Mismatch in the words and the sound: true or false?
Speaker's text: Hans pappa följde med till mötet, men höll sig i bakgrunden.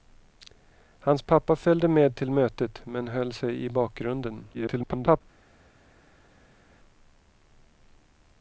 true